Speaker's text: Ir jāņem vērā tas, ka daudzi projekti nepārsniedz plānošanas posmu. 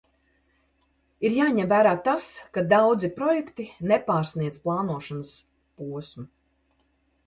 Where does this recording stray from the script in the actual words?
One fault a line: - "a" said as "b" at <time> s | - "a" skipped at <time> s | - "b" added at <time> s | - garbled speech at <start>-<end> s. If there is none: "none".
none